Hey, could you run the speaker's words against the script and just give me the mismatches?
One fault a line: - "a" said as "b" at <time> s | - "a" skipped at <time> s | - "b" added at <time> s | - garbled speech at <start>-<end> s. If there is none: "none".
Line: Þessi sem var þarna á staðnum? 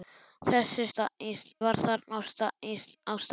- "sem" said as "staðnum" at 0.9 s